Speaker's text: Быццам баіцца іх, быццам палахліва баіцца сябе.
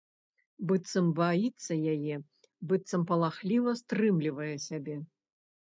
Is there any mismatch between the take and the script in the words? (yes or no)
yes